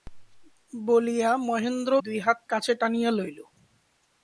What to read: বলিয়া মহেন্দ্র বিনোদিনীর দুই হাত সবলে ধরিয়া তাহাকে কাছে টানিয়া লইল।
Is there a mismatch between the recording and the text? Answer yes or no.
yes